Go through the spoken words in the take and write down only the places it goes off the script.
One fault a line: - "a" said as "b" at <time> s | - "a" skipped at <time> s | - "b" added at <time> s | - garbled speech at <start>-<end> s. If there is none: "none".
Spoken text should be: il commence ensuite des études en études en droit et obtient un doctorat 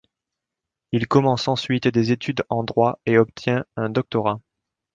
- "études en" skipped at 2.6 s